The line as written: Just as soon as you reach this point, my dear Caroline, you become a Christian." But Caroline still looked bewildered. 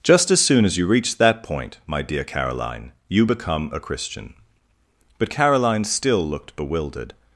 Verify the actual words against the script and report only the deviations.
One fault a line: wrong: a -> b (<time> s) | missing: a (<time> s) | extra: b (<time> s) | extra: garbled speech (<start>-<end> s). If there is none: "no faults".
wrong: this -> that (1.2 s)